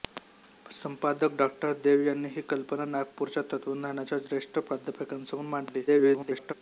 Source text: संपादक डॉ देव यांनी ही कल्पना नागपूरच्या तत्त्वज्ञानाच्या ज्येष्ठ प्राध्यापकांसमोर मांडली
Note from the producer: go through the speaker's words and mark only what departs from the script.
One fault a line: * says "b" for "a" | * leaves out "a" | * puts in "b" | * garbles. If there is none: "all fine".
* garbles